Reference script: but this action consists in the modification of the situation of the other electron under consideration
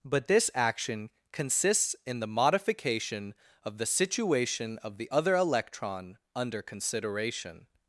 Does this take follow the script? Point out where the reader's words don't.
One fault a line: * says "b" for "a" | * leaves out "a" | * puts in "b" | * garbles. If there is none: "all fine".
all fine